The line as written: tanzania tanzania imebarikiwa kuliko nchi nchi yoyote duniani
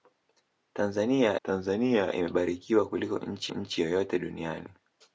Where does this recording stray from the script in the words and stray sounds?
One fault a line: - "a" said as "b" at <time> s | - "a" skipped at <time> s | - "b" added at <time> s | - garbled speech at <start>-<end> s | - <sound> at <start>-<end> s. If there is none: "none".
none